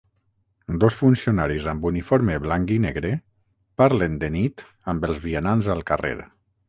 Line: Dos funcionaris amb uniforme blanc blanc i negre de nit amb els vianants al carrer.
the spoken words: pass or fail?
fail